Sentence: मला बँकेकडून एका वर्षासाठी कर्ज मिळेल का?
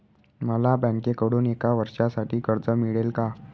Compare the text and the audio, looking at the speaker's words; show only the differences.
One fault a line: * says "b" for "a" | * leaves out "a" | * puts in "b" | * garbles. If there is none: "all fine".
all fine